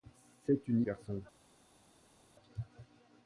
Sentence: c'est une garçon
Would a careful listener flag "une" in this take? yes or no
no